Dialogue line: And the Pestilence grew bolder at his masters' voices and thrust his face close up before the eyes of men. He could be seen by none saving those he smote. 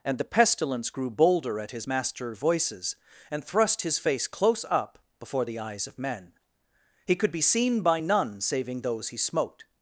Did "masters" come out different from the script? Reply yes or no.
yes